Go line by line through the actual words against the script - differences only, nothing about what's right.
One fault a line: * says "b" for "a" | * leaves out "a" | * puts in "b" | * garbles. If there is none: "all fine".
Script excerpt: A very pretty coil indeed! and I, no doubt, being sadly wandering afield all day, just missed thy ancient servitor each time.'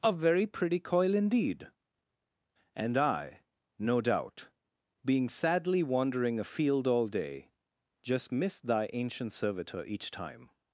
all fine